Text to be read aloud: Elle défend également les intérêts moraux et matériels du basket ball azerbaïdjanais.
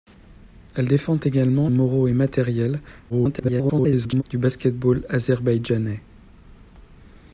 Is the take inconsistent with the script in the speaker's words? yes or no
yes